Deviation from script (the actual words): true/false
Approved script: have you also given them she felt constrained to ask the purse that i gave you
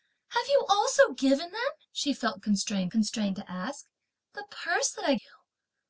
true